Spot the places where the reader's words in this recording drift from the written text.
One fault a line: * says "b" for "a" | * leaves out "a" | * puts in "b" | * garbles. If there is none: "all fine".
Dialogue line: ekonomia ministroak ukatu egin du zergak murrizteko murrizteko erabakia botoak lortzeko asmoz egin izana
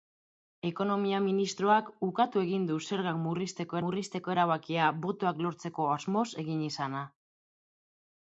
all fine